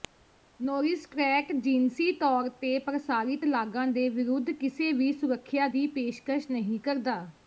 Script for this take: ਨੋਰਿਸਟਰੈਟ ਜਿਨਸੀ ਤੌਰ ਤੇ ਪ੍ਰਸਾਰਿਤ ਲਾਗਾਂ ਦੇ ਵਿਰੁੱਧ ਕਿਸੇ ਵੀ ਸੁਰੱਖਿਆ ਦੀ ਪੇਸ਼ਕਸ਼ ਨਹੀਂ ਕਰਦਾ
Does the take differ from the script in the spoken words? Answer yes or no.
no